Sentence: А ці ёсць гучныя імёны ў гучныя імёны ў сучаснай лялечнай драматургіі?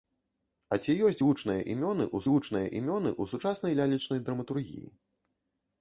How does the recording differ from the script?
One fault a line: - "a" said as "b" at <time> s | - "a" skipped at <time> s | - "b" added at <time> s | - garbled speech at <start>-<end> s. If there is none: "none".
none